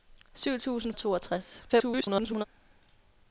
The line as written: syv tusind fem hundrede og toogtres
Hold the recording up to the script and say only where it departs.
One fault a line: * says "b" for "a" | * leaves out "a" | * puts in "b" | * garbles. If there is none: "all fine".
* leaves out "fem hundrede"
* garbles